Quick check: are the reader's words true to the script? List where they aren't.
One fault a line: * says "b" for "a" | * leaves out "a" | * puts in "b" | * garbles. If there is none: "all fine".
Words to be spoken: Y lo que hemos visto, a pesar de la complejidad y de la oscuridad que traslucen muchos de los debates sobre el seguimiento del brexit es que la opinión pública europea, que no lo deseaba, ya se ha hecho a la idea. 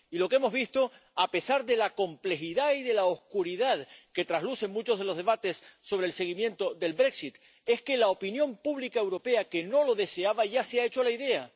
all fine